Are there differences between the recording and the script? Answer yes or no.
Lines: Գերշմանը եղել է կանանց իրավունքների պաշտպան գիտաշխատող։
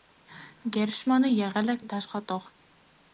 yes